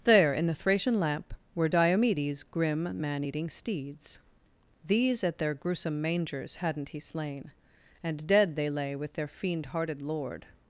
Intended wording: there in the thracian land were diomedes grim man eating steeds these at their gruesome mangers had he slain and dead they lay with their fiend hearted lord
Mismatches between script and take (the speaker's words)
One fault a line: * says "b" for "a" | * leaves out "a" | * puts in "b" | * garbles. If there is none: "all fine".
* says "lamp" for "land"
* says "hadn't" for "had"